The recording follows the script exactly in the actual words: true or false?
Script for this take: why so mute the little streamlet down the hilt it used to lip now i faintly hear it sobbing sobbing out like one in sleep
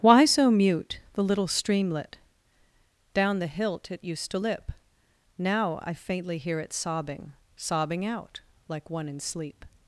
true